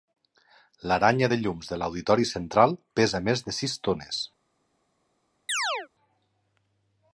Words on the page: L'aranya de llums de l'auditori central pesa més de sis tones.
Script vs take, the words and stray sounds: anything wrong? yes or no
yes